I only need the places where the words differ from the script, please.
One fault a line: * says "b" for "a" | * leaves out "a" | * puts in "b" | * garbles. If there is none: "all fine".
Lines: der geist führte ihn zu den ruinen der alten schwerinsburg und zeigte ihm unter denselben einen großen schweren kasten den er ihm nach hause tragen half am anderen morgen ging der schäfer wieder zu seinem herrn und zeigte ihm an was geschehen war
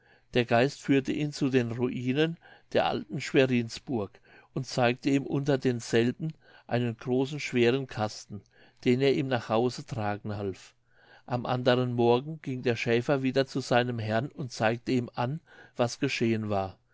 all fine